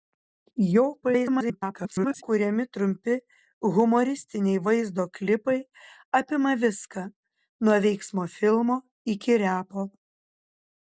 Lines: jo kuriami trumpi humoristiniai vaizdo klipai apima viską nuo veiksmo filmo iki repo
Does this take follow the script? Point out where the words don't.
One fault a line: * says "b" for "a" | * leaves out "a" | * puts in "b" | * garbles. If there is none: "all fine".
* garbles